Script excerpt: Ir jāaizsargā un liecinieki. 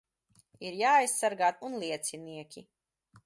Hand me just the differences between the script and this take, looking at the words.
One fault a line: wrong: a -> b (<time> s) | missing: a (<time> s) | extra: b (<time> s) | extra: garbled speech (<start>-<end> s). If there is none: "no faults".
no faults